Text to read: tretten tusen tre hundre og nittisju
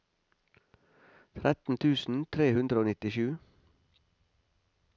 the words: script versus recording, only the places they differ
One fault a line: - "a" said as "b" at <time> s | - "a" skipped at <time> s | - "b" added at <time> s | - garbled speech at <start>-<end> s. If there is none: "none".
none